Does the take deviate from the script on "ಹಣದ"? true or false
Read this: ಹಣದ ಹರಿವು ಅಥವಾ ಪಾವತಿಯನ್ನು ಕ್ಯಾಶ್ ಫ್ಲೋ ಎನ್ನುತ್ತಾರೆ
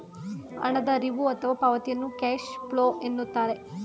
false